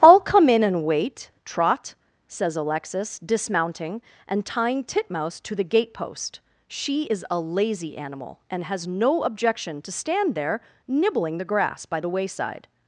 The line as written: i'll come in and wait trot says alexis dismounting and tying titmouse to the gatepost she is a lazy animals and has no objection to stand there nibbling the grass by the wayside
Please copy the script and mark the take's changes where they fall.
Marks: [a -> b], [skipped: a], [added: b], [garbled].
i'll come in and wait trot says alexis dismounting and tying titmouse to the gatepost she is a lazy [animals -> animal] and has no objection to stand there nibbling the grass by the wayside